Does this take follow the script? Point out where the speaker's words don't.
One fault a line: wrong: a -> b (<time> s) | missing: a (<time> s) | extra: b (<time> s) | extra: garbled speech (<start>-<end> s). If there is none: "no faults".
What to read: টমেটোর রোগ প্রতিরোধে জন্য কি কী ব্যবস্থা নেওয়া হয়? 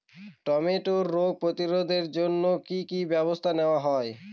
no faults